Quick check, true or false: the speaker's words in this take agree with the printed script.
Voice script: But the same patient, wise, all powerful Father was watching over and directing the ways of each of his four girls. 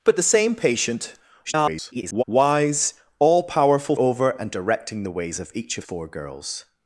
false